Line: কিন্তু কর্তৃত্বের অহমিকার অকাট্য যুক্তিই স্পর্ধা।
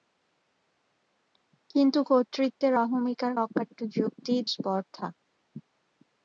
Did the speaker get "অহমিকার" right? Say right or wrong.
right